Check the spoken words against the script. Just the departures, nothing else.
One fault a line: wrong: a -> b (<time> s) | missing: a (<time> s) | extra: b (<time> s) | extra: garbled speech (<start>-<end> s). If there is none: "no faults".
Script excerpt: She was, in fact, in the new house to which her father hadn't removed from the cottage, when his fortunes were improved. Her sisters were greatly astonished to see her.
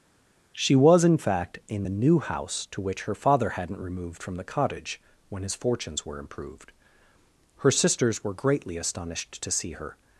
no faults